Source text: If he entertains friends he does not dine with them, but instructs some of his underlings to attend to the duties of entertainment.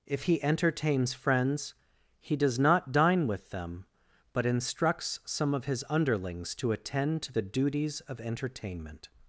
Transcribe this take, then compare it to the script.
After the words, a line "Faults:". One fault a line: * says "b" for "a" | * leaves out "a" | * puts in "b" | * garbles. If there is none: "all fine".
If he entertains friends he does not dine with them, but instructs some of his underlings to attend to the duties of entertainment.
Faults:
all fine